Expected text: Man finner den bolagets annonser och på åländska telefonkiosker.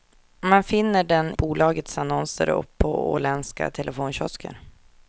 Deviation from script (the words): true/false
false